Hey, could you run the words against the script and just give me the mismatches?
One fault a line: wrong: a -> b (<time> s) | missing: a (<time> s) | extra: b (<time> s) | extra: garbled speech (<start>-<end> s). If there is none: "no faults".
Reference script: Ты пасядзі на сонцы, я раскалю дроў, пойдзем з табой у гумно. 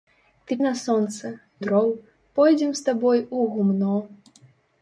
missing: пасядзі (0.6 s)
missing: я раскалю (1.3 s)